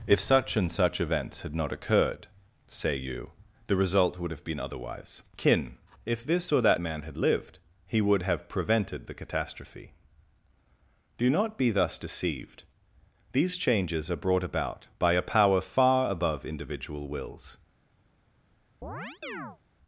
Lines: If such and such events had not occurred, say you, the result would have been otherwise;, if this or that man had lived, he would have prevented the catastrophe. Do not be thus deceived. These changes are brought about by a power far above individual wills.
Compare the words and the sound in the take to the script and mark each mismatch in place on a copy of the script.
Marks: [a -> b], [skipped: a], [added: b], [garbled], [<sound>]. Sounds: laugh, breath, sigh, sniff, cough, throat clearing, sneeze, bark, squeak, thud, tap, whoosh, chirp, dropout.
If such and such events had not occurred, say you, the result would have been otherwise;, [added: kin] if this or that man had lived, he would have prevented the catastrophe. Do not be thus deceived. These changes are brought about by a power far above individual wills. [chirp]